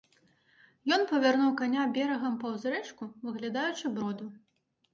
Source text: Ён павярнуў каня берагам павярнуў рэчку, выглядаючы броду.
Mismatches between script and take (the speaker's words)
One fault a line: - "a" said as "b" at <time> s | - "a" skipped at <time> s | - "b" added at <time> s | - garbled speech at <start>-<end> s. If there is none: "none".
- "павярнуў" said as "паўз" at 2.5 s